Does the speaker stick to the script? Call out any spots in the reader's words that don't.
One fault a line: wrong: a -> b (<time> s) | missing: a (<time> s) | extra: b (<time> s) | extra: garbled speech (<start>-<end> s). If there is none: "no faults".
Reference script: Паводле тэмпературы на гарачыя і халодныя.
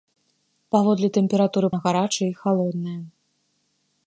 no faults